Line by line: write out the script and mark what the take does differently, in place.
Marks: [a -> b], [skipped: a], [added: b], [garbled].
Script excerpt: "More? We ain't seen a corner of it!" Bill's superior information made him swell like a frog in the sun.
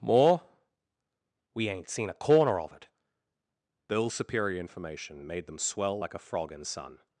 "More? We ain't seen a corner of it!" Bill's superior information made [him -> them] swell like a frog in [skipped: the] sun.